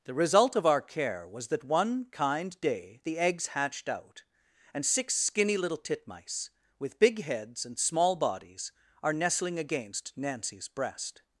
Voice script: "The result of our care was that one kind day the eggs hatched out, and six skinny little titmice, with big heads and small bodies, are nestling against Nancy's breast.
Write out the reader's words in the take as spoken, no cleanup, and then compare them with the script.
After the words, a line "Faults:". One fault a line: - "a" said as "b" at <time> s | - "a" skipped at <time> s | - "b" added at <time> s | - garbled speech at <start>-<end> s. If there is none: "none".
"The result of our care was that one kind day the eggs hatched out, and six skinny little titmice, with big heads and small bodies, are nestling against Nancy's breast.
Faults:
none